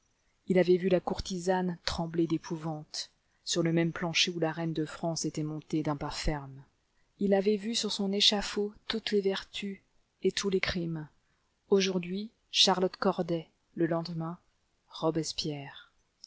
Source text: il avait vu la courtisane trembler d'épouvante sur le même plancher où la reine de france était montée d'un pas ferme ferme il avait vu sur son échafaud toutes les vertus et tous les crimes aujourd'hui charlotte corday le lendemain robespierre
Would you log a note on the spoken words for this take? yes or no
yes